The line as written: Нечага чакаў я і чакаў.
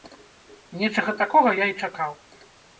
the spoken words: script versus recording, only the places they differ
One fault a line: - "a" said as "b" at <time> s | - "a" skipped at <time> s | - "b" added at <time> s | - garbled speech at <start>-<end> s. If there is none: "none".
- "чакаў" said as "такога" at 1.2 s